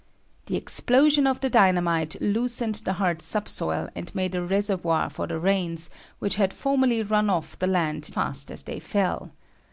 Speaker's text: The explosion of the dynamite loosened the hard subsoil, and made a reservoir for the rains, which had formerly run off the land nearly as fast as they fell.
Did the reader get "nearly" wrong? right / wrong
wrong